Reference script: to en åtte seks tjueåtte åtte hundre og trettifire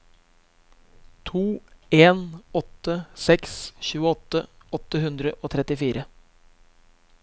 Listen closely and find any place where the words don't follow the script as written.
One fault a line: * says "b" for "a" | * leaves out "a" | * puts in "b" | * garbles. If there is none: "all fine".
all fine